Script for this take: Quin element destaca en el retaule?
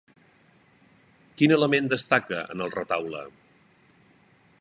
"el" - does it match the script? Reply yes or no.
yes